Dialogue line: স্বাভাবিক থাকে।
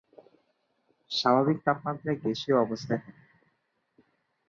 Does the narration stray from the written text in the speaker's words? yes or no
yes